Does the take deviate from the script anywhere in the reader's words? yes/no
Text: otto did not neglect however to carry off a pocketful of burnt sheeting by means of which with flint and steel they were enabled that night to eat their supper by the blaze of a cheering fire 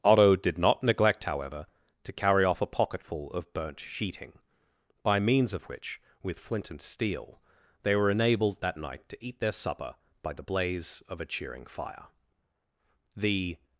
yes